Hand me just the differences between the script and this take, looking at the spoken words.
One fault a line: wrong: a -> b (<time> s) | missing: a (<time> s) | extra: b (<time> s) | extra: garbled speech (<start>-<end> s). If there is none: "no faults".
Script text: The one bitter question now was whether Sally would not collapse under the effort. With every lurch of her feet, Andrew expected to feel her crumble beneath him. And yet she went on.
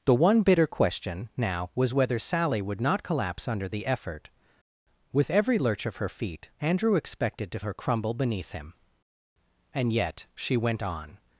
missing: feel (7.6 s)